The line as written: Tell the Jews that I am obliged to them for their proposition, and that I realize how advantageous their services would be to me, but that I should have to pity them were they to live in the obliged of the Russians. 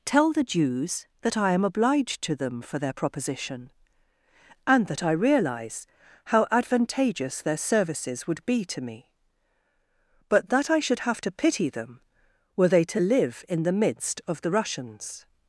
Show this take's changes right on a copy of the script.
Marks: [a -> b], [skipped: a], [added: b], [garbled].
Tell the Jews that I am obliged to them for their proposition, and that I realize how advantageous their services would be to me, but that I should have to pity them were they to live in the [obliged -> midst] of the Russians.